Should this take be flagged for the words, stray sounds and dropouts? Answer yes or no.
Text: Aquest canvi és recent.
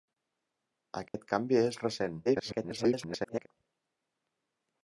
yes